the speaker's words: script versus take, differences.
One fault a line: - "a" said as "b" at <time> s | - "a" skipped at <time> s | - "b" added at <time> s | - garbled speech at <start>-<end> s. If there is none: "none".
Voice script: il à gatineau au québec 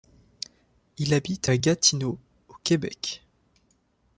- "habite" added at 1.1 s